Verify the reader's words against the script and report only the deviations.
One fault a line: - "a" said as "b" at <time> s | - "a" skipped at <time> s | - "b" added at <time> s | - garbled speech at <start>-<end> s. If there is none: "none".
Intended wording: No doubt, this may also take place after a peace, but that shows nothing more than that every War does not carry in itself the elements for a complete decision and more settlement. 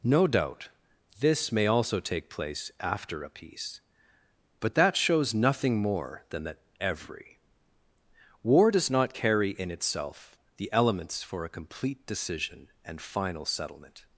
- "more" said as "final" at 13.0 s